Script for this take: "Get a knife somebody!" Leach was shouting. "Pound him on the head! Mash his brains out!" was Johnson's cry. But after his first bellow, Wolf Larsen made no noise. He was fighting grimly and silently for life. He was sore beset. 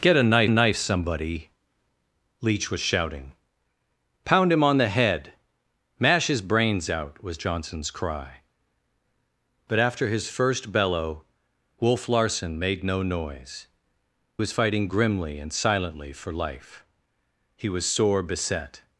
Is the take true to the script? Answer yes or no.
no